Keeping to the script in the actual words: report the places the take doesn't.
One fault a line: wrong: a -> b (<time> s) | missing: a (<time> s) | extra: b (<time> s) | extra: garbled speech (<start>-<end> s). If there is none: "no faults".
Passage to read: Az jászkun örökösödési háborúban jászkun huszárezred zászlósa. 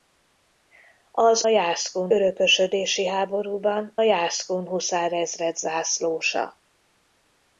no faults